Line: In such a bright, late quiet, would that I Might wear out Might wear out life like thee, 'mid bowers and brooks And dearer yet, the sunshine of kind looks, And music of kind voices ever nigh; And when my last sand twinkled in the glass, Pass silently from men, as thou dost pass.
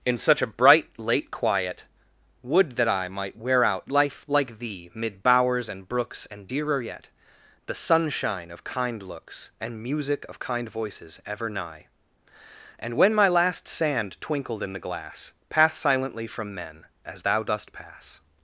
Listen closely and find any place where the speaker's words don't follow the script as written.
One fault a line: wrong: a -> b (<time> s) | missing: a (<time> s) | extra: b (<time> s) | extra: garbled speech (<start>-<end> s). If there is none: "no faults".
missing: Might wear out (3.9 s)